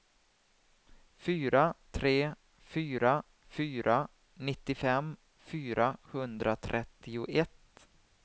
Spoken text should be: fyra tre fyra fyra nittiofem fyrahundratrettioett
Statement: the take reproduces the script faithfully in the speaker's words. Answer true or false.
true